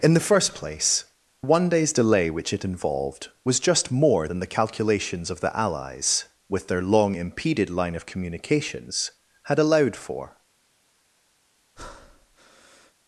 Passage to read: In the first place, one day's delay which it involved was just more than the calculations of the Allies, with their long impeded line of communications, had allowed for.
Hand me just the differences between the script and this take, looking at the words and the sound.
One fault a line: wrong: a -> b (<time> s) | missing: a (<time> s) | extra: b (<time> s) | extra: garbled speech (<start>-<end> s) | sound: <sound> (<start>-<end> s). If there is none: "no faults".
sound: breath (11.8-12.9 s)